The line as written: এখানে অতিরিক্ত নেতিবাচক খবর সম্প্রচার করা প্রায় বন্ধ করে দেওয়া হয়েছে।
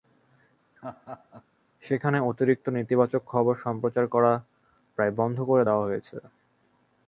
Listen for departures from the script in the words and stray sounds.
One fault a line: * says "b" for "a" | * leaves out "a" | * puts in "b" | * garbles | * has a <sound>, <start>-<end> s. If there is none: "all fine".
* has a laugh, 0.8-1.4 s
* says "সেখানে" for "এখানে"